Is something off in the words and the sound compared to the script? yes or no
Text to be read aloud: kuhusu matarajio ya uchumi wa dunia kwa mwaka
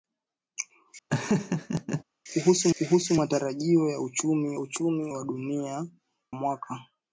yes